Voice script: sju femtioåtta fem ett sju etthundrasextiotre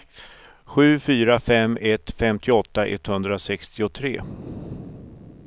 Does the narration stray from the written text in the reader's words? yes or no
yes